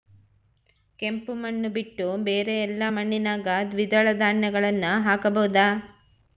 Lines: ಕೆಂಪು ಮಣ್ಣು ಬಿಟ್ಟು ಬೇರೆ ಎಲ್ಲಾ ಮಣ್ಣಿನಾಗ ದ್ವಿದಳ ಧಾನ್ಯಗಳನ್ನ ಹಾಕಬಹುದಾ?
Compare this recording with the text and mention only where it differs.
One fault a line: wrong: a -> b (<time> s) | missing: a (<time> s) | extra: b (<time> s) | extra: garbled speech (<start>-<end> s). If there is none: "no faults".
no faults